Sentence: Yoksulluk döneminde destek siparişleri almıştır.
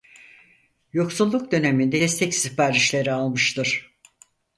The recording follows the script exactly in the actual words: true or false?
true